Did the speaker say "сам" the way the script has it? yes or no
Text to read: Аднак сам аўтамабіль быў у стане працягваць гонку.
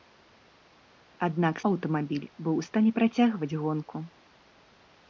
no